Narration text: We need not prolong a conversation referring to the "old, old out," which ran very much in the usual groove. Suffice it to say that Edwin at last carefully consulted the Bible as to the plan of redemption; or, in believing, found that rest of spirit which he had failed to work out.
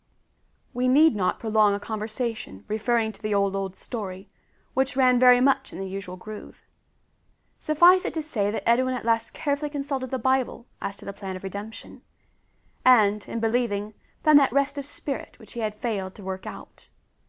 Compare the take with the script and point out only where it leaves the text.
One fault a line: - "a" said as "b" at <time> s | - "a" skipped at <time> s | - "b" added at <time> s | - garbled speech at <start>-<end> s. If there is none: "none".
- "out" said as "story" at 3.8 s
- "or" said as "and" at 12.8 s